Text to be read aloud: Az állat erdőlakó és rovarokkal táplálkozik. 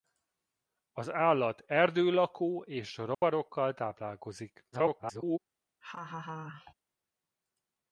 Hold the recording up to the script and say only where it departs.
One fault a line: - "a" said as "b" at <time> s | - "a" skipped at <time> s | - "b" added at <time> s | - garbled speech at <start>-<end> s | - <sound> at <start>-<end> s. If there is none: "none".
- dropout at 3.1-3.2 s
- garbled speech at 4.7-5.4 s
- laugh at 5.8-6.7 s